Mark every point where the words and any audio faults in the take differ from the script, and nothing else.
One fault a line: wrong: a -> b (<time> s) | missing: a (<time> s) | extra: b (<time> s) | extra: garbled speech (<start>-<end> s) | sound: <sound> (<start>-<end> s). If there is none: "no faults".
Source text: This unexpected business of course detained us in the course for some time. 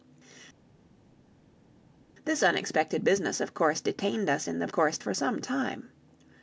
no faults